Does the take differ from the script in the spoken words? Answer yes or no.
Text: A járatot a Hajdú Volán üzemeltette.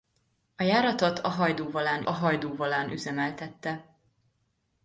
yes